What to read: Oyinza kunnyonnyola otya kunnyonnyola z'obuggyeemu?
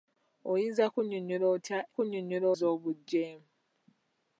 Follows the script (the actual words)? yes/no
yes